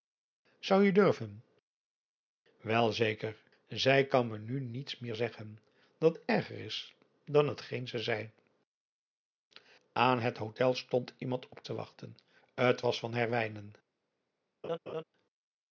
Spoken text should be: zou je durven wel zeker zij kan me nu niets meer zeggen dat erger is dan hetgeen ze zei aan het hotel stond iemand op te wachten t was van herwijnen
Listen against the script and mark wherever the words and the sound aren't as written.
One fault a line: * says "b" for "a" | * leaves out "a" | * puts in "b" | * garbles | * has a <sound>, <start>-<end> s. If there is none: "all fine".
* has a laugh, 14.6-15.0 s